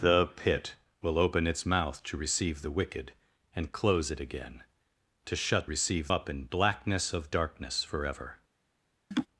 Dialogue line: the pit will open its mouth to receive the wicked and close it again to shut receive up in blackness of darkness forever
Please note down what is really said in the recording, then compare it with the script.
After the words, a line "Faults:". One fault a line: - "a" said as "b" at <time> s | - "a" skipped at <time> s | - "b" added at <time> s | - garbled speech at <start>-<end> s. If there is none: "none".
the pit will open its mouth to receive the wicked and close it again to shut receive up in blackness of darkness forever
Faults:
none